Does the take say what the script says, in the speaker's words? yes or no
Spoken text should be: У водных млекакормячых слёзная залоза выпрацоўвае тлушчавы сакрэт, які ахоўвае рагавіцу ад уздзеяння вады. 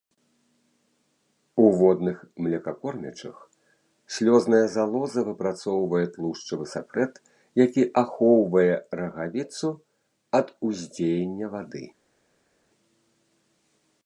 yes